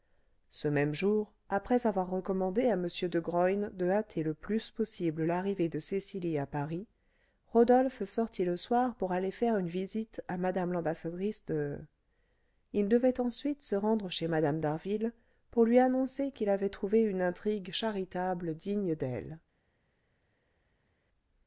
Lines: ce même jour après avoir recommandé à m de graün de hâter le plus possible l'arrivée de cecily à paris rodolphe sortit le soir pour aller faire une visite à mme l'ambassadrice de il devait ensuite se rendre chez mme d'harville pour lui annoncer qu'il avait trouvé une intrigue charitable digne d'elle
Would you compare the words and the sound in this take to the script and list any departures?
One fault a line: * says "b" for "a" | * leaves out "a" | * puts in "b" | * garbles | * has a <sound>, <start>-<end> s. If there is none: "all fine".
all fine